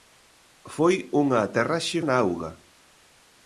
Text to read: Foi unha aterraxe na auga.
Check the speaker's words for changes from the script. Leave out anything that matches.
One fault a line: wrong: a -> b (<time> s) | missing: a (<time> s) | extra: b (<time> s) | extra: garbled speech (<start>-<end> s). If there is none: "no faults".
no faults